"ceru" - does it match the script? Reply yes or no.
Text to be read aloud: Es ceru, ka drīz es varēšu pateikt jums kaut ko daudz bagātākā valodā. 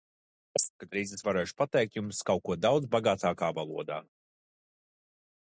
no